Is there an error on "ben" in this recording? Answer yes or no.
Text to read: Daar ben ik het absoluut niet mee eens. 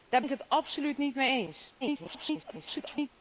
yes